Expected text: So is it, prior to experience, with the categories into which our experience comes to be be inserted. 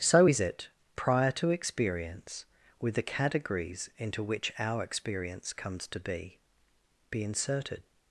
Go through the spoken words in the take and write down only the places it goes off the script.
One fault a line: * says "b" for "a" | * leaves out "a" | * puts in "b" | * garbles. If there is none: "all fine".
all fine